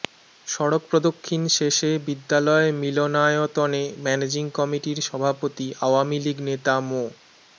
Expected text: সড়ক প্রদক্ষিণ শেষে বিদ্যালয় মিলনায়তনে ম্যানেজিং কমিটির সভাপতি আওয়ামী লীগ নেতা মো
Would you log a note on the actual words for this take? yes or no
no